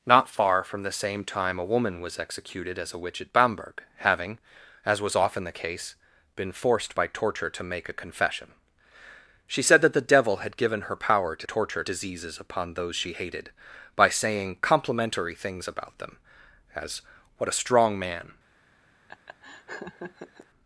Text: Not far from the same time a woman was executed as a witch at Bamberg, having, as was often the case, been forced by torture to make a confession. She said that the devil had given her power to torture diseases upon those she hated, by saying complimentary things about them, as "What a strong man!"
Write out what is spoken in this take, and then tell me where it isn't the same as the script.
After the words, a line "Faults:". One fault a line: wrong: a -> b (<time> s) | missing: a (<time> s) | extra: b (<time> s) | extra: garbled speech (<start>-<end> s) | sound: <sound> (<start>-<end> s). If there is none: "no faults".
Not far from the same time a woman was executed as a witch at Bamberg, having, as was often the case, been forced by torture to make a confession. She said that the devil had given her power to torture diseases upon those she hated, by saying complimentary things about them, as "What a strong man!"
Faults:
sound: laugh (19.1-20.5 s)